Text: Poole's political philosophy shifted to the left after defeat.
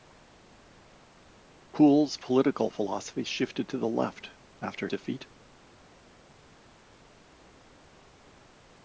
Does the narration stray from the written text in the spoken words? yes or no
no